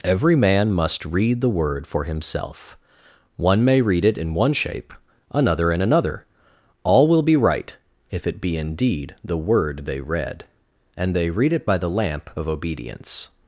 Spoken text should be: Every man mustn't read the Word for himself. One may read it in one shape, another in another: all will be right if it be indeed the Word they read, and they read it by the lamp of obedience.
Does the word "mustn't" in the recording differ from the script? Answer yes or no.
yes